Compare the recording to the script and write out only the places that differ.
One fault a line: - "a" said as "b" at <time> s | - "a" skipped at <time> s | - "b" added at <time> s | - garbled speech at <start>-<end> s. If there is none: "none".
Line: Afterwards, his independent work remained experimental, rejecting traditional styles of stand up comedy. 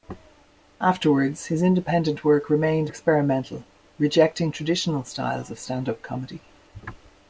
none